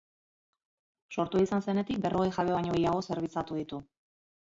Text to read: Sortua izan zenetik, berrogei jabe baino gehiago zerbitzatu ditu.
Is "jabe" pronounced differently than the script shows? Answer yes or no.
no